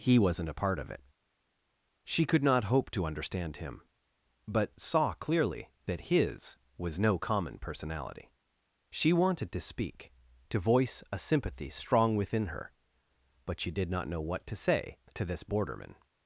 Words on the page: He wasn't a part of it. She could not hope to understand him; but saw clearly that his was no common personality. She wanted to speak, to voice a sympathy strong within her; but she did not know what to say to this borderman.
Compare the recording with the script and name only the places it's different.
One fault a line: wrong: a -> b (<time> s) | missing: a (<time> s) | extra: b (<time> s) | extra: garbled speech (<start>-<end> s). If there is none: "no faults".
no faults